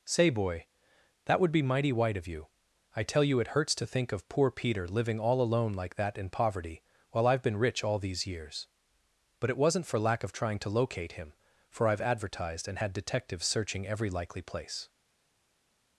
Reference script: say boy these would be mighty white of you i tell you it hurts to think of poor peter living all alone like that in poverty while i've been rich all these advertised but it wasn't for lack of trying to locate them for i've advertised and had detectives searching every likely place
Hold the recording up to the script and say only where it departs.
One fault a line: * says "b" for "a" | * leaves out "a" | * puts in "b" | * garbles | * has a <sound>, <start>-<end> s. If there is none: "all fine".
* says "that" for "these"
* says "years" for "advertised"
* says "him" for "them"